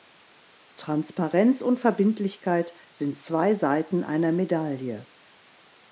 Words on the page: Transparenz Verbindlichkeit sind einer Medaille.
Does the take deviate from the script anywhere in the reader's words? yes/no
yes